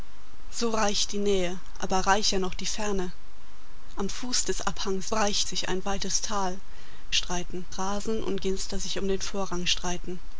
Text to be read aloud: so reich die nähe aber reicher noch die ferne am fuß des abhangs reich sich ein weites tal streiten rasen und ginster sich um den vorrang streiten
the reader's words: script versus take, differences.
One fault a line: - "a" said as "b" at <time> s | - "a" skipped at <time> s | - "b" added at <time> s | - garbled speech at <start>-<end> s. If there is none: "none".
none